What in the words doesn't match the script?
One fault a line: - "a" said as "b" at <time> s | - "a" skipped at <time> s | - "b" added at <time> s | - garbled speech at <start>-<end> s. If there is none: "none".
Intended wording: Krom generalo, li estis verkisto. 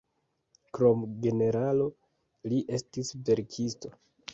none